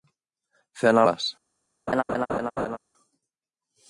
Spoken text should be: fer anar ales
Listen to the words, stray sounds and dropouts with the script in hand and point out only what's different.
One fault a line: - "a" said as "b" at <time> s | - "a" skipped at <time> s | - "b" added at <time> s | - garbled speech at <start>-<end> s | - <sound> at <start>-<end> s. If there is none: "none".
- laugh at 1.9-2.8 s